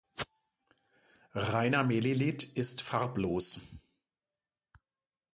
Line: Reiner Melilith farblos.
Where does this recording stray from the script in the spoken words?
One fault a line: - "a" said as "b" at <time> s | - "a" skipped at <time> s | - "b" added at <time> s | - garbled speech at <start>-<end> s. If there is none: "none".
- "ist" added at 2.6 s